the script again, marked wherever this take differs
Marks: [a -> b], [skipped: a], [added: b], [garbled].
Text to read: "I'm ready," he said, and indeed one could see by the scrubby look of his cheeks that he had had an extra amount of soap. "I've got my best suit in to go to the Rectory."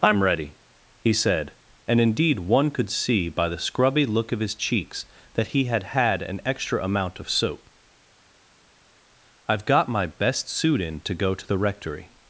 "I'm ready," he said, and indeed one could see by the scrubby look of his cheeks that he had had an extra amount of soap. "I've got my best suit in to go to the Rectory."